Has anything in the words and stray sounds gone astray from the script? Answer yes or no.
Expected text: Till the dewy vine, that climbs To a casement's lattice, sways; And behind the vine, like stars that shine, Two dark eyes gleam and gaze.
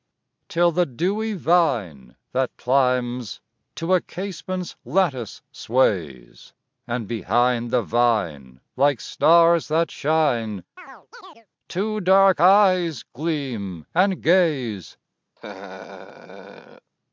yes